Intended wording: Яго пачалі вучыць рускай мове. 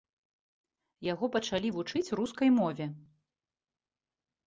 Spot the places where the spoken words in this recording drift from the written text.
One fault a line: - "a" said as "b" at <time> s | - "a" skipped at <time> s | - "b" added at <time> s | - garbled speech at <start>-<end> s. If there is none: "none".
none